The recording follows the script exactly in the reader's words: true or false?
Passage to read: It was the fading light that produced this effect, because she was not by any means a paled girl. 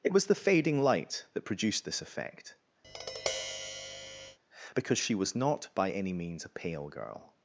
false